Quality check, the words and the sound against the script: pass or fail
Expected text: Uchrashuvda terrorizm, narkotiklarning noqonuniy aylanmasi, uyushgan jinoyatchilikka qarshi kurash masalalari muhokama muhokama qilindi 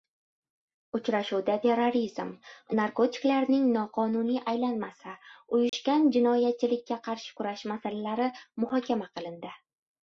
fail